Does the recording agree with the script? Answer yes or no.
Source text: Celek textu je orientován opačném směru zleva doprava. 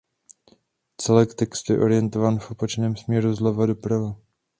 no